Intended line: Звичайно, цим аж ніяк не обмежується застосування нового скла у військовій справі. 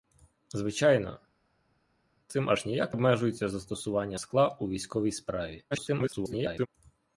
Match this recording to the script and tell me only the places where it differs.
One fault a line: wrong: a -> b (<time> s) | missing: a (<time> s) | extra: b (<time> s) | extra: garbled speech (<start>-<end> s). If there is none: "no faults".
missing: не (3.0 s)
missing: нового (4.2 s)
extra: garbled speech (5.7-6.7 s)